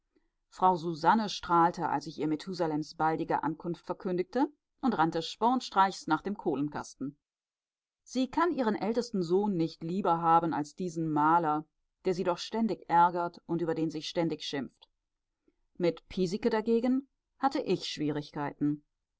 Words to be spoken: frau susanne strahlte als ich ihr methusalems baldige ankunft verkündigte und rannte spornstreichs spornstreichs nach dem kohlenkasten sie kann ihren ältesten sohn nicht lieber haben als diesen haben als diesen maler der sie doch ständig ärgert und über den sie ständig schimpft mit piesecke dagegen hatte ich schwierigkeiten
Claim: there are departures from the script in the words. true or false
true